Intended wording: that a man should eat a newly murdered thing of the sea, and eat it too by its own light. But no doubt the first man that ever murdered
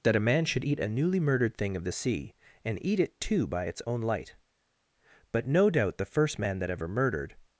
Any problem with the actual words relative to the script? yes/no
no